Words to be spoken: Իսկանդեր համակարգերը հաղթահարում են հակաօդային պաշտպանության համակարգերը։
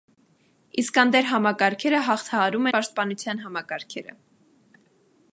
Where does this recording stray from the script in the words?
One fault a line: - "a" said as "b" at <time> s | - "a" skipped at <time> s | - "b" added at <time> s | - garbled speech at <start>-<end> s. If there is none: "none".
- "են հակաօդային" skipped at 2.7 s